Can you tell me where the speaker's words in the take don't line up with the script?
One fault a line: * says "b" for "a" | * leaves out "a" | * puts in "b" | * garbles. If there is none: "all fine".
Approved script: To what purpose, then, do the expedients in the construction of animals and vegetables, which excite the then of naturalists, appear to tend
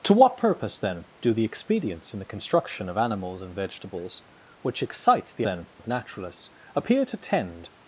all fine